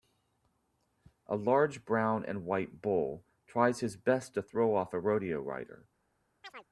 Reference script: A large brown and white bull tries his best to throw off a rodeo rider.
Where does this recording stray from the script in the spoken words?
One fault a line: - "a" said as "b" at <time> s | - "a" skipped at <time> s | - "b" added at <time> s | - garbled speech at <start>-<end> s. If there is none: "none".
none